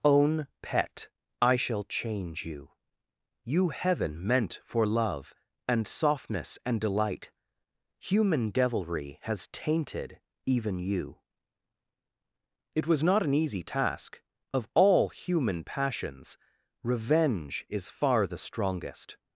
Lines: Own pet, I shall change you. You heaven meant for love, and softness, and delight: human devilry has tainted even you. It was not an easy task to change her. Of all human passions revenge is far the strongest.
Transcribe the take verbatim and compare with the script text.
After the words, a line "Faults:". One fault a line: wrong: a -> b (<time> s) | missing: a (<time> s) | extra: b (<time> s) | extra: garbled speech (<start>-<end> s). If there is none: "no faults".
Own pet, I shall change you. You heaven meant for love, and softness, and delight: human devilry has tainted even you. It was not an easy task. Of all human passions revenge is far the strongest.
Faults:
missing: to change her (14.2 s)